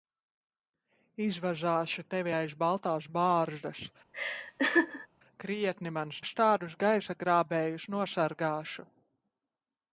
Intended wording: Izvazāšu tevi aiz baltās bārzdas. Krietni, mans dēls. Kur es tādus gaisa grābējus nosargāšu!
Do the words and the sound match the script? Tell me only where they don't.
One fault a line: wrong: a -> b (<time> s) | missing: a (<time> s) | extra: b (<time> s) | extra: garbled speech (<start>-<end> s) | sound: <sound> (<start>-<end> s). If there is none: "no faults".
sound: laugh (4.1-5.1 s)
missing: dēls Kur (6.2 s)